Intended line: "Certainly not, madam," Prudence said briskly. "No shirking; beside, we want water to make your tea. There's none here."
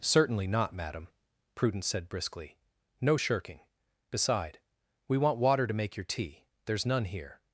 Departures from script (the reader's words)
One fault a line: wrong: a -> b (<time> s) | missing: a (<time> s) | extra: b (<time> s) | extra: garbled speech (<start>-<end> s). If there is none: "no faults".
no faults